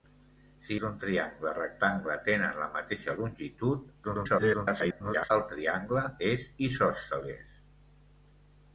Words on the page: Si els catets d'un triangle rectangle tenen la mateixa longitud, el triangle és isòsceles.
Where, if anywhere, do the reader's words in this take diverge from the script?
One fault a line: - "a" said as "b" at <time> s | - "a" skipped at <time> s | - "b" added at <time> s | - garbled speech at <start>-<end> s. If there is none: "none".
- "els catets" skipped at 0.8 s
- garbled speech at 4.0-5.3 s